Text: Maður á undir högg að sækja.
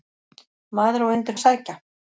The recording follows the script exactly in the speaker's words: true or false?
false